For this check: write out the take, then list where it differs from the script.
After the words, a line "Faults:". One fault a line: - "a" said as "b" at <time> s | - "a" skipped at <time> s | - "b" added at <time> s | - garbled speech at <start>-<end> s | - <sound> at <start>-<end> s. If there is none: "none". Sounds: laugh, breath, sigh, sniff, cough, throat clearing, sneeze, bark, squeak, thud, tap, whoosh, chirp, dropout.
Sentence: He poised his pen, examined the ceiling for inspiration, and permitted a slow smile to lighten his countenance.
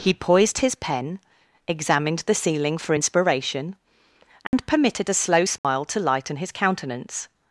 He poised his pen, examined the ceiling for inspiration, and permitted a slow smile to lighten his countenance.
Faults:
- dropout at 4.5-4.5 s
- dropout at 5.6-5.6 s